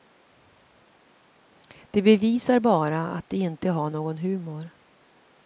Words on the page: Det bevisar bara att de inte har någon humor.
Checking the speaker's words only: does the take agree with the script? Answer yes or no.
yes